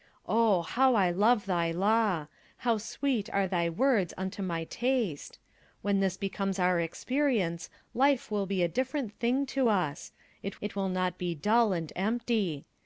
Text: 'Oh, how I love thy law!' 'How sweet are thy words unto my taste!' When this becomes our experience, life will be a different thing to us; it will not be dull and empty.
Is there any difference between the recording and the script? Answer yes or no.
yes